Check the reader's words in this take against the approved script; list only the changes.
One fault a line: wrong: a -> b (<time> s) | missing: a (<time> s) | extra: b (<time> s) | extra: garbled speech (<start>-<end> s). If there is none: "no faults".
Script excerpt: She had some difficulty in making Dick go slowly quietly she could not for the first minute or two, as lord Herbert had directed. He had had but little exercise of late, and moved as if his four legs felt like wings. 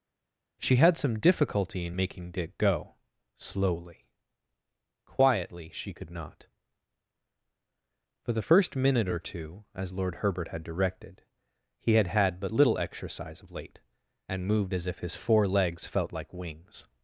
no faults